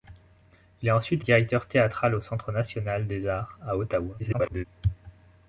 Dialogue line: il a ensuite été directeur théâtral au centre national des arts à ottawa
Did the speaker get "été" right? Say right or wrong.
wrong